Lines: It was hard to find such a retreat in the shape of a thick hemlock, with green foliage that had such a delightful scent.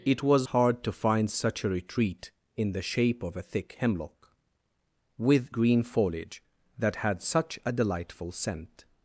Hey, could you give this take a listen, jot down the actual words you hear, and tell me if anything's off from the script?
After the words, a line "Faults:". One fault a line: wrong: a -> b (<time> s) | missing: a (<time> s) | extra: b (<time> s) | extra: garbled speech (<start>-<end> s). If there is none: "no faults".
It was hard to find such a retreat in the shape of a thick hemlock, with green foliage that had such a delightful scent.
Faults:
no faults